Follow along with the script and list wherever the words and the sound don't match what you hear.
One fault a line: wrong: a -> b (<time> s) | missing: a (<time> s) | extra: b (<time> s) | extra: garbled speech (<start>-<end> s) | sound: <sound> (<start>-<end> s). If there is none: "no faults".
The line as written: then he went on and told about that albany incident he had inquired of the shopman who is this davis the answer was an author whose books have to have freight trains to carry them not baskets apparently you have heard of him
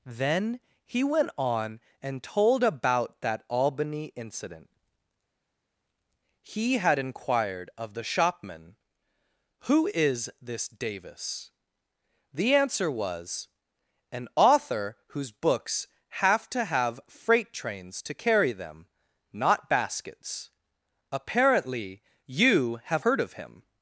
no faults